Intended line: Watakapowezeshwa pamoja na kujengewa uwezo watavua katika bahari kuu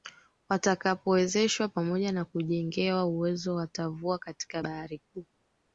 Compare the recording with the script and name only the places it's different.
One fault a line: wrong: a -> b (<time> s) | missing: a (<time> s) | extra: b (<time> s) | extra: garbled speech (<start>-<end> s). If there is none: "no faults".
no faults